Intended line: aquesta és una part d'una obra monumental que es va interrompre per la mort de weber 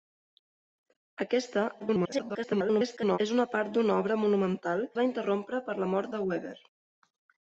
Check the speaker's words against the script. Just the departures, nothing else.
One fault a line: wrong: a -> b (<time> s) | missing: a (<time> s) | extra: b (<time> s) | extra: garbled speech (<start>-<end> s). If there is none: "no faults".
extra: garbled speech (1.8-3.2 s)
missing: que (4.8 s)